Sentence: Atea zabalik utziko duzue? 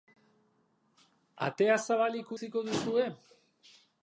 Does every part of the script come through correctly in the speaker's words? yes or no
yes